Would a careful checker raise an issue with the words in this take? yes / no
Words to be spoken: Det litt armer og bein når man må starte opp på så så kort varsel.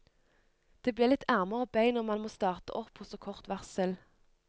yes